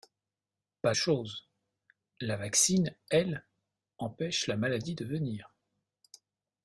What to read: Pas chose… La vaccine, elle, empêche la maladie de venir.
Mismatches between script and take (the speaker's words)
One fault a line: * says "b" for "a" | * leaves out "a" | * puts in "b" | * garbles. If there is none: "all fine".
all fine